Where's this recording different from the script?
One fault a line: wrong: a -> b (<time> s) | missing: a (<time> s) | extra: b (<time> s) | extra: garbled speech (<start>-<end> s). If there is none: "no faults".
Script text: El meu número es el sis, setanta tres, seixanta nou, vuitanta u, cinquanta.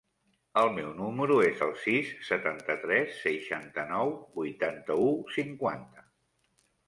no faults